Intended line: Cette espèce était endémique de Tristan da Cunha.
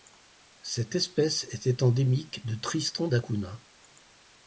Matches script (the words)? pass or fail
pass